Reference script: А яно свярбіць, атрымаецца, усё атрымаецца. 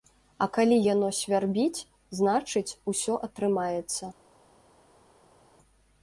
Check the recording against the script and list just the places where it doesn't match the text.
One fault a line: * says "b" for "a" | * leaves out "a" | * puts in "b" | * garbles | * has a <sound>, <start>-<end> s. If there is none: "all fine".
* puts in "калі"
* says "значыць" for "атрымаецца"